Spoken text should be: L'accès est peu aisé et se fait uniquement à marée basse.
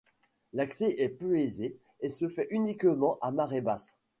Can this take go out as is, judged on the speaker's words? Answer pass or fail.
pass